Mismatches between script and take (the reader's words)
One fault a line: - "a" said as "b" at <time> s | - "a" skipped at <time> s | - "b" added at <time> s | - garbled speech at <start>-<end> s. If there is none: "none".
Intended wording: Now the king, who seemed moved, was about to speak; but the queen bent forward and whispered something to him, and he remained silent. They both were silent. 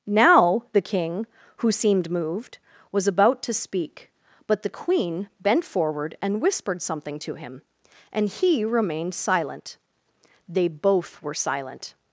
none